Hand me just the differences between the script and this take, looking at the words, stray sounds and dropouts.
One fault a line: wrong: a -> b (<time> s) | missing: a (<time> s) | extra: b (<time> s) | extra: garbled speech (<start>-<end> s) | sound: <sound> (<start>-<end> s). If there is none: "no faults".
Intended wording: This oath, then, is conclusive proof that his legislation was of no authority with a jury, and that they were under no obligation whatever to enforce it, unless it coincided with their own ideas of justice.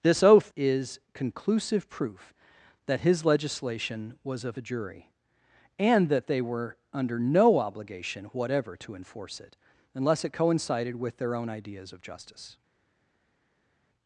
missing: then (0.5 s)
missing: no authority with (4.6 s)